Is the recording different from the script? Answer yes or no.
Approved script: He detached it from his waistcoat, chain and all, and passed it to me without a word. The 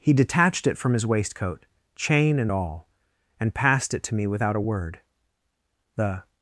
no